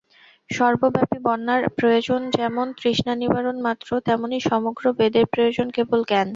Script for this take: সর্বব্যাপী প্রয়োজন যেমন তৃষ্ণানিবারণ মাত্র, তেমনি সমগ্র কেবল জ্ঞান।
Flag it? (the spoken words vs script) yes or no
yes